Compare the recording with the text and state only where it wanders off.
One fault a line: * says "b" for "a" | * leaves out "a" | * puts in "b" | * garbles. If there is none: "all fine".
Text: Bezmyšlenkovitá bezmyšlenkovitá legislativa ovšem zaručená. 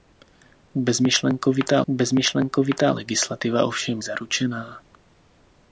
all fine